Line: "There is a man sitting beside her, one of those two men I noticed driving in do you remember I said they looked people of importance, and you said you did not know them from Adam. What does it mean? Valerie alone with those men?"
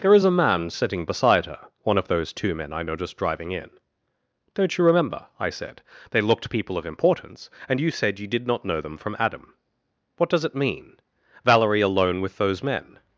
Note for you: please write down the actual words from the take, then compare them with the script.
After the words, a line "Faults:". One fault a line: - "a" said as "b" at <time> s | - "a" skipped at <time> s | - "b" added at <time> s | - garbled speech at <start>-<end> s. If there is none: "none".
"There is a man sitting beside her, one of those two men I noticed driving in don't you remember I said they looked people of importance, and you said you did not know them from Adam. What does it mean? Valerie alone with those men?"
Faults:
- "do" said as "don't" at 4.5 s